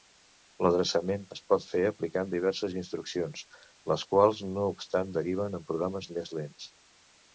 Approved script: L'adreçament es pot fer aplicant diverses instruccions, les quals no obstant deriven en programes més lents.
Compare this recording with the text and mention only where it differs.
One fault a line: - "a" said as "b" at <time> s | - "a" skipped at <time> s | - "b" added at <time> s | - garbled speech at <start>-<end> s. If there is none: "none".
none